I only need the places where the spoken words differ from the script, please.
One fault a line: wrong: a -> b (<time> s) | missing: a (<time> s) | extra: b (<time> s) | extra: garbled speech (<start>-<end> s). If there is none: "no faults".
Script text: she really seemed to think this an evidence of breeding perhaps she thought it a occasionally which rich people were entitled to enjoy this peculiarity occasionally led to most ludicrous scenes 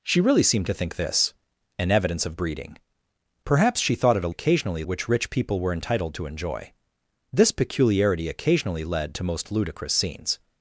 no faults